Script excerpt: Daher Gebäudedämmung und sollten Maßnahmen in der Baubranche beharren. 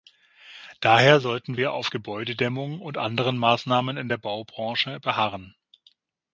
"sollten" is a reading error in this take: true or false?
true